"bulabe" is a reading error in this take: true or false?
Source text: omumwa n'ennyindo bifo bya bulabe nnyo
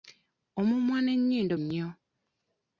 true